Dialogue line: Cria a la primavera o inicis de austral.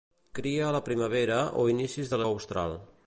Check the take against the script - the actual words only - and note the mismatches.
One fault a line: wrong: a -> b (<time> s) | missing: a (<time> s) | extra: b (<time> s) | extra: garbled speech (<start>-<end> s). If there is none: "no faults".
no faults